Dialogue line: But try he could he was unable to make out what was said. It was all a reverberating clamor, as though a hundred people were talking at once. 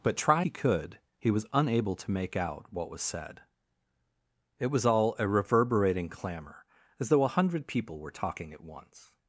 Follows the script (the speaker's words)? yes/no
yes